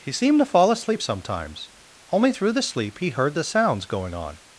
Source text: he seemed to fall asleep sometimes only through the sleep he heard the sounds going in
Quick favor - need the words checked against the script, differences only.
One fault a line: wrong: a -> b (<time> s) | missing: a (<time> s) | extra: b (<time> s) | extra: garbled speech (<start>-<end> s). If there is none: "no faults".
wrong: in -> on (4.1 s)